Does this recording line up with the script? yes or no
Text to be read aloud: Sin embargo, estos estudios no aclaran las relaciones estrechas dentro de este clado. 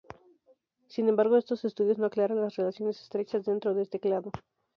yes